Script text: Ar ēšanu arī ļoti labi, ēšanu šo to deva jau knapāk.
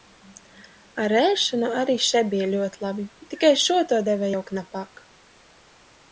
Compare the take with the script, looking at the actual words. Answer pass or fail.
fail